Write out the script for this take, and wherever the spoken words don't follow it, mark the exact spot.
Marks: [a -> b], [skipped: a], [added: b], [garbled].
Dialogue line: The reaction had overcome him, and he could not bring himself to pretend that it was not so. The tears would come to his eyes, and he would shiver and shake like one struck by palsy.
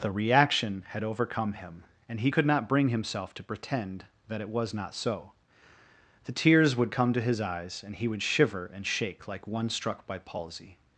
The reaction had overcome him, and he could not bring himself to pretend that it was not so. The tears would come to his eyes, and he would shiver and shake like one struck by palsy.